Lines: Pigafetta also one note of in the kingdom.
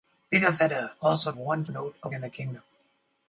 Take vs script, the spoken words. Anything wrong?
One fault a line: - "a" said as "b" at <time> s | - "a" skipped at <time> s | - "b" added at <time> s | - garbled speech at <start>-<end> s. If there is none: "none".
none